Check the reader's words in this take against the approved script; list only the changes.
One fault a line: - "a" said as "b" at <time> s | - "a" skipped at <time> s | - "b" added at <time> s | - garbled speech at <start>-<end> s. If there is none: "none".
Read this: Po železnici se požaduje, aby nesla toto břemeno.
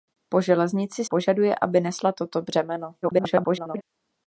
- "se" skipped at 1.1 s
- garbled speech at 3.0-3.8 s